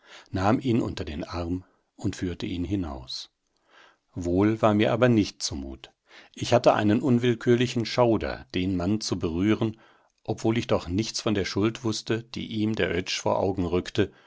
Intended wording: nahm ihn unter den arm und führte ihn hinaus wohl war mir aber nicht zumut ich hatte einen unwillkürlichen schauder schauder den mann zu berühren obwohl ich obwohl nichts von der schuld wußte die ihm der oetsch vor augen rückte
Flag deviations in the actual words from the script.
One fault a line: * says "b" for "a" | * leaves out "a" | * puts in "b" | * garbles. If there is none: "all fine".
* leaves out "schauder"
* says "doch" for "obwohl"